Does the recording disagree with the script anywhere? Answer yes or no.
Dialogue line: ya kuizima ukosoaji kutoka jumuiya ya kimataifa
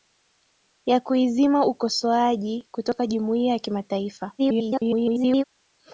yes